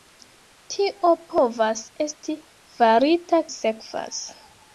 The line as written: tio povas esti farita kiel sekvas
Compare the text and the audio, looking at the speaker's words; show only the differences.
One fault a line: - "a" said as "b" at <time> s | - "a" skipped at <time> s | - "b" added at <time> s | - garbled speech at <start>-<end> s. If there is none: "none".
- "kiel" skipped at 3.4 s